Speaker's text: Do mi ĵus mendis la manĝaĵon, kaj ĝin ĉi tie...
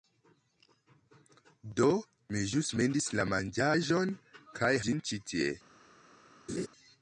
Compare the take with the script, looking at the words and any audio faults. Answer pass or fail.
fail